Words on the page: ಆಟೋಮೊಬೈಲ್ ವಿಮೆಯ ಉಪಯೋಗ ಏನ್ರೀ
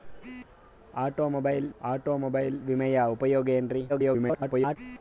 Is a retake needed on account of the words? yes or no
yes